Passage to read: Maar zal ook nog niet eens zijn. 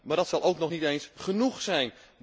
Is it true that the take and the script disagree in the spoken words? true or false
true